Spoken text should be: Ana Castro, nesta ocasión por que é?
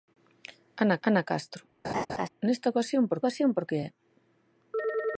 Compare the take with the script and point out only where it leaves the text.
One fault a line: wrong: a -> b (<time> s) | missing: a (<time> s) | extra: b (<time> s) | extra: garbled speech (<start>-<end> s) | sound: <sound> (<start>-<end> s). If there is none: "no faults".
extra: ana (1.1 s)
sound: laugh (1.8-2.3 s)
extra: ocasión por (3.2 s)